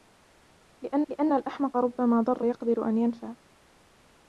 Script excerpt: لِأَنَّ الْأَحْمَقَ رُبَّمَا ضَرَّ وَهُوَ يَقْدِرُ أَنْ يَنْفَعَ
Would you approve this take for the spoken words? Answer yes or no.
no